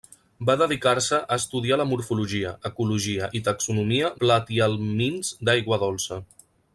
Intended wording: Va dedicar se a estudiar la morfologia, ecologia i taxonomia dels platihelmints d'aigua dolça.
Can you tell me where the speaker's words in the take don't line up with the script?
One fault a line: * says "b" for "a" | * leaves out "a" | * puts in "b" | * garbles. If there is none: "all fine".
* leaves out "dels"